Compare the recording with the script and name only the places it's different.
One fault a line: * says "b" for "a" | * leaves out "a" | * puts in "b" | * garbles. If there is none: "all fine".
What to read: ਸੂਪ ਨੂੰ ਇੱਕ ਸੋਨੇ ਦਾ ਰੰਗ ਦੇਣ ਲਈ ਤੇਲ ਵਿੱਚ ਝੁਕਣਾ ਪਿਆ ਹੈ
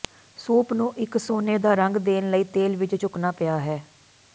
all fine